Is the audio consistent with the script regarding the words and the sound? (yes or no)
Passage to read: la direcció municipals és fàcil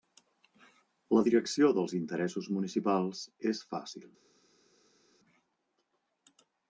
no